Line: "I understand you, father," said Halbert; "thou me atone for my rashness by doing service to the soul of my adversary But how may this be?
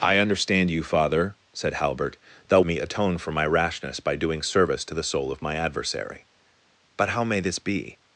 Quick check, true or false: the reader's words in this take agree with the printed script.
true